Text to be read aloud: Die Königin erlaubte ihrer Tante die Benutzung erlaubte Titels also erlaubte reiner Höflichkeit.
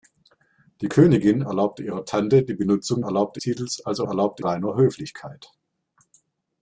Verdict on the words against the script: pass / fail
pass